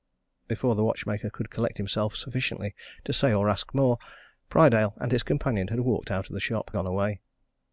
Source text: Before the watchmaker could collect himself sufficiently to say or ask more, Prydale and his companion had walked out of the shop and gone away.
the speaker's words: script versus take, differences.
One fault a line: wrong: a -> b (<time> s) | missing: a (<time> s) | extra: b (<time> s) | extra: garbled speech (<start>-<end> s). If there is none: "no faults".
missing: and (6.7 s)